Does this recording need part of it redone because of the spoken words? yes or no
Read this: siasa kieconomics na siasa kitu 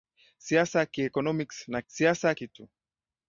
no